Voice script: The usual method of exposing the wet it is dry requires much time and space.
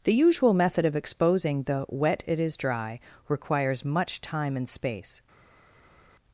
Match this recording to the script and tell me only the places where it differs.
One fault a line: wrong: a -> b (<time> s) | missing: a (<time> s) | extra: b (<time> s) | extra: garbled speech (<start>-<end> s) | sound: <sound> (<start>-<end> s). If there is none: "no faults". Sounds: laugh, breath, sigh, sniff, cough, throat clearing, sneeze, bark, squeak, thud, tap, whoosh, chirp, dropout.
no faults